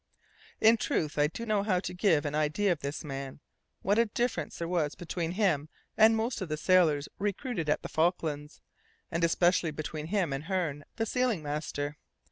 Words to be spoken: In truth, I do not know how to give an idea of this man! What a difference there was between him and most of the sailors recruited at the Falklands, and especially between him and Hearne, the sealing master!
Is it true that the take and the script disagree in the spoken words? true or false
true